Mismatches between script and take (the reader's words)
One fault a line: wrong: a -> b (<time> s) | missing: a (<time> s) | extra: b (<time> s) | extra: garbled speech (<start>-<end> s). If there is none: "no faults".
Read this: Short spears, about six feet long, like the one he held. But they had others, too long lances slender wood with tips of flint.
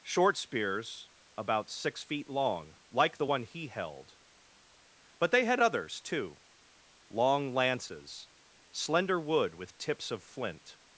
no faults